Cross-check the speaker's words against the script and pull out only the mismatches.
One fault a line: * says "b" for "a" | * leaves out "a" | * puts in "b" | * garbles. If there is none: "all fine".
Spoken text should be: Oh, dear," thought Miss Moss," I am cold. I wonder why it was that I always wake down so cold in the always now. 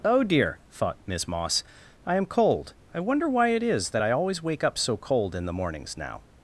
* says "is" for "was"
* says "up" for "down"
* says "mornings" for "always"